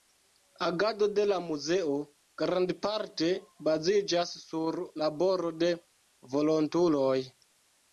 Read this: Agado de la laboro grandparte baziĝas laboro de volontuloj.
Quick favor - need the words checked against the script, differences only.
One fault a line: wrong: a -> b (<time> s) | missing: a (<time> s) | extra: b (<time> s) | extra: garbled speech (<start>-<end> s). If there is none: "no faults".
wrong: laboro -> muzeo (1.5 s)
extra: sur (4.5 s)